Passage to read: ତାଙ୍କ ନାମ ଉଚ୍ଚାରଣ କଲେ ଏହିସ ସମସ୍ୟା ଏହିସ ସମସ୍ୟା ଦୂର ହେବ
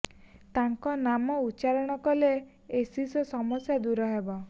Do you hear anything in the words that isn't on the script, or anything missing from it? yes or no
yes